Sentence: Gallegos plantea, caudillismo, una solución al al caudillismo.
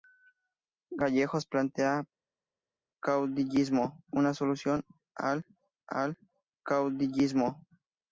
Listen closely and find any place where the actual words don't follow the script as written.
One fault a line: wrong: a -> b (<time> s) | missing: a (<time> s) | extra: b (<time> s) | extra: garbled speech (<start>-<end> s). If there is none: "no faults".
no faults